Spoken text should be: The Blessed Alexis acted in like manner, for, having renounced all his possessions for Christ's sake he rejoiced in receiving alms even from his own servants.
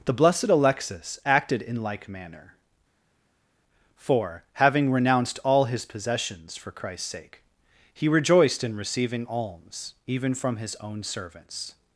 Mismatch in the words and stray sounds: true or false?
false